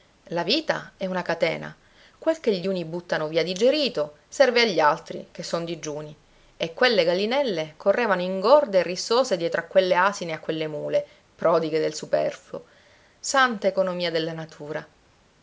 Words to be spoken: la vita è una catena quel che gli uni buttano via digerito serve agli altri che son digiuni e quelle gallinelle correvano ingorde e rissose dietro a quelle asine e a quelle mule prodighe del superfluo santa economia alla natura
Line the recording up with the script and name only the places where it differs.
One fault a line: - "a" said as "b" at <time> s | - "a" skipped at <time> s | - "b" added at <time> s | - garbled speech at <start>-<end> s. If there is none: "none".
- "alla" said as "della" at 14.1 s